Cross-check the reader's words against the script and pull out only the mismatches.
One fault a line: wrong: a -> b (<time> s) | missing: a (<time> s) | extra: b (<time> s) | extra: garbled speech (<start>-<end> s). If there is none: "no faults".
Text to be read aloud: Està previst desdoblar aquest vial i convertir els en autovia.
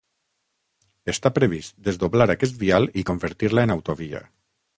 wrong: els -> la (3.6 s)